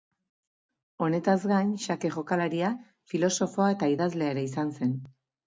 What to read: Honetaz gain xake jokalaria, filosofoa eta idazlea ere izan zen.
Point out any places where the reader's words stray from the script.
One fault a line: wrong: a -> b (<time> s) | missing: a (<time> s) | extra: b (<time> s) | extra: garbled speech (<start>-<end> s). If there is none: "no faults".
no faults